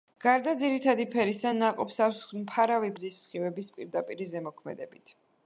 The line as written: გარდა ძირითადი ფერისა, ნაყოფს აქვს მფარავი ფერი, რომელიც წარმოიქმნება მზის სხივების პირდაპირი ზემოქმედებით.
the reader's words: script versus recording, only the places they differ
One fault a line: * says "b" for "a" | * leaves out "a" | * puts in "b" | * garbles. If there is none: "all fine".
* leaves out "ფერი რომელიც წარმოიქმნება"